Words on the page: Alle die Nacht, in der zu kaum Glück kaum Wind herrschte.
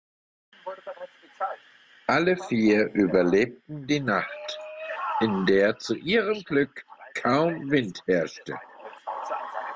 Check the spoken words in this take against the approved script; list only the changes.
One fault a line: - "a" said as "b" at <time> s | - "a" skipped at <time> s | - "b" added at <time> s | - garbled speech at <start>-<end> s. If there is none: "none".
- "vier überlebten" added at 2.4 s
- "kaum" said as "ihrem" at 6.0 s